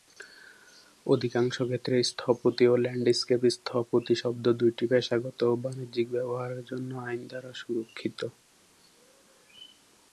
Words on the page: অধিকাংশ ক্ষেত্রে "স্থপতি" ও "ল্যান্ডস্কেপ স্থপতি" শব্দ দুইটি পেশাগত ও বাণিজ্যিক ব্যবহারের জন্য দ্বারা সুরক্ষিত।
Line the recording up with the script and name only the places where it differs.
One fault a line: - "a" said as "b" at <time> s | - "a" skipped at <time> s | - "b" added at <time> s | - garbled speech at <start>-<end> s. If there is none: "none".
- "আইন" added at 7.1 s